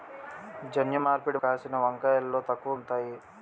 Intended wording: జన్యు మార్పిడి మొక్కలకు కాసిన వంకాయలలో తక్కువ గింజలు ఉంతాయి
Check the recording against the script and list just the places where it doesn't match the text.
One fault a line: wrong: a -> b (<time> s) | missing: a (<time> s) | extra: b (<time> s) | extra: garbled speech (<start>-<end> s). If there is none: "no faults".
missing: మొక్కలకు (1.4 s)
missing: గింజలు (2.7 s)